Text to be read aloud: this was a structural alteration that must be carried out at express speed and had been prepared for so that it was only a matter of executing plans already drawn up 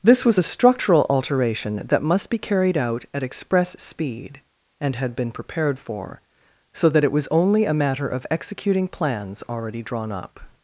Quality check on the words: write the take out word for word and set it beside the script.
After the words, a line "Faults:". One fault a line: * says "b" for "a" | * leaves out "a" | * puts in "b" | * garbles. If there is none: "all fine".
this was a structural alteration that must be carried out at express speed and had been prepared for so that it was only a matter of executing plans already drawn up
Faults:
all fine